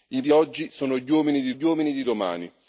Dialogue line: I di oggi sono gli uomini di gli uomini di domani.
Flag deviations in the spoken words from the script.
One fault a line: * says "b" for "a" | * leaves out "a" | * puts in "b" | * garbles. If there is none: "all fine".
all fine